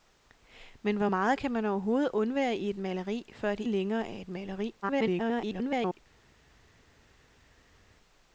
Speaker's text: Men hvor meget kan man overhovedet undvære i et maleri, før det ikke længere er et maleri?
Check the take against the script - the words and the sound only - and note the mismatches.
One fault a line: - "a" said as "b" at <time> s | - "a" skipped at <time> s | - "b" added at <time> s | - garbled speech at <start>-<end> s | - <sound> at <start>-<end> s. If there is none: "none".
- "ikke" skipped at 3.6 s
- garbled speech at 4.8-6.0 s